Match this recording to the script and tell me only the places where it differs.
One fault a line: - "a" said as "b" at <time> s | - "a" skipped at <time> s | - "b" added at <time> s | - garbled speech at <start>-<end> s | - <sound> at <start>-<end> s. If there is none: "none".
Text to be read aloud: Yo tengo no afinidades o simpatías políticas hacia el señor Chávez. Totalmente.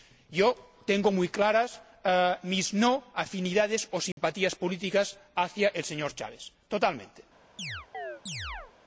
- "muy claras mis" added at 1.1 s
- dropout at 4.1-4.2 s
- chirp at 7.6-8.7 s